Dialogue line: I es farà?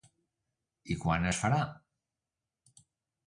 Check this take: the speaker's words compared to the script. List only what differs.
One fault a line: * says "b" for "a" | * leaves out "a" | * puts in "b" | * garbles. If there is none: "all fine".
* puts in "quan"